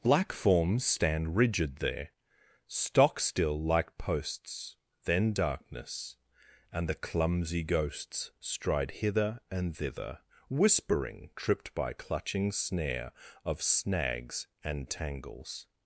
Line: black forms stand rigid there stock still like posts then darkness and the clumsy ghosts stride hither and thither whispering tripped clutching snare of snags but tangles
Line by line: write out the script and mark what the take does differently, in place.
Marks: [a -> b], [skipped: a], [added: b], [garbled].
black forms stand rigid there stock still like posts then darkness and the clumsy ghosts stride hither and thither whispering tripped [added: by] clutching snare of snags [but -> and] tangles